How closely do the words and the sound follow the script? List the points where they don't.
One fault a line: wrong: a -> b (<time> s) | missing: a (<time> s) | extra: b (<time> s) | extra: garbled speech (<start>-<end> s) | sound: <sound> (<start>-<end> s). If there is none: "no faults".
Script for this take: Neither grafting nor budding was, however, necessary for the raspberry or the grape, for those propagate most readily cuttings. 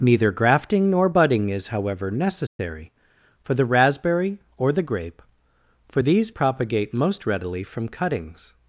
wrong: was -> is (1.5 s)
sound: dropout (2.5-2.6 s)
wrong: those -> these (6.0 s)
extra: from (7.6 s)